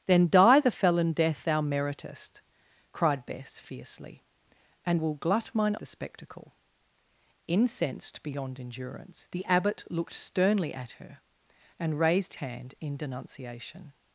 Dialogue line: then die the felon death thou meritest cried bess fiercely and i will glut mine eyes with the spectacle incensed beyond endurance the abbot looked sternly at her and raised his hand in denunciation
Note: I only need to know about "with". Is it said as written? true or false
false